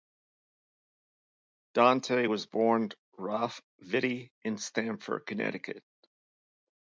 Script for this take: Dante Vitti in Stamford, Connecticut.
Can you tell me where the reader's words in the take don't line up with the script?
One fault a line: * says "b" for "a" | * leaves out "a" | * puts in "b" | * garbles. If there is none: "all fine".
* puts in "was born Ralph"